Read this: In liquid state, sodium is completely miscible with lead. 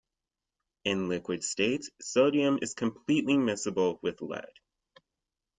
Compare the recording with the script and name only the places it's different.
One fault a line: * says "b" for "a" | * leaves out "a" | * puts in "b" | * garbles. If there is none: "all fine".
all fine